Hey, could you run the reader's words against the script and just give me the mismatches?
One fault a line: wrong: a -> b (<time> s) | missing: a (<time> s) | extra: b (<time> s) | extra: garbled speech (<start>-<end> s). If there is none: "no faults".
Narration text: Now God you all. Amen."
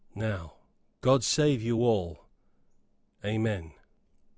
extra: save (1.2 s)